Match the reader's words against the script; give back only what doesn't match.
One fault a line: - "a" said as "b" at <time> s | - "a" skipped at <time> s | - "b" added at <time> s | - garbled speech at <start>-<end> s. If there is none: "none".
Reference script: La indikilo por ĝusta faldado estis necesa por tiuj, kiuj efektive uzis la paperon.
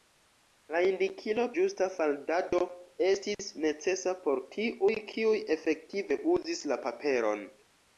- "por" skipped at 1.4 s